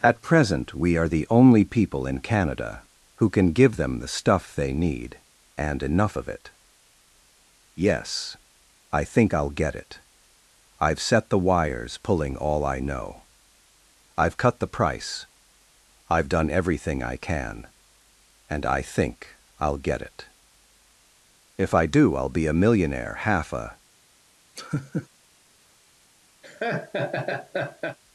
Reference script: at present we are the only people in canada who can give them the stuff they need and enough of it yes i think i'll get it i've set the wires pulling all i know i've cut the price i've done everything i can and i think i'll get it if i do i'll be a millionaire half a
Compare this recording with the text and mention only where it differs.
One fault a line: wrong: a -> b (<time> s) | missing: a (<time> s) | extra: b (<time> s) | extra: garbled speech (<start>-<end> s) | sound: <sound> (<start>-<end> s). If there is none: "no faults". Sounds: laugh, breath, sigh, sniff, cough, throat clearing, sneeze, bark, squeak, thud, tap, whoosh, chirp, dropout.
sound: laugh (24.6-25.1 s)
sound: laugh (26.4-28.0 s)